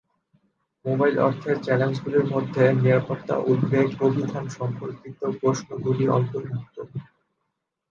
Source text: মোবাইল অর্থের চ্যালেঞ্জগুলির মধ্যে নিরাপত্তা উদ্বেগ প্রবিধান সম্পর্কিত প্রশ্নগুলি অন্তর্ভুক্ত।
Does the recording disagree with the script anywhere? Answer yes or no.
no